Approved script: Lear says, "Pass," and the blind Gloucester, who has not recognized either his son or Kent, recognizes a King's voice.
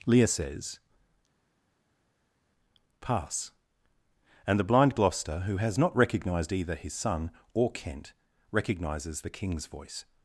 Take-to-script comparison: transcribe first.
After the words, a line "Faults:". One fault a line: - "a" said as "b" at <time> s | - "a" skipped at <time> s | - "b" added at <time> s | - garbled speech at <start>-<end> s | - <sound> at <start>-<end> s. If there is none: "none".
Lear says, "Pass," and the blind Gloucester, who has not recognized either his son or Kent, recognizes the King's voice.
Faults:
- "a" said as "the" at 9.2 s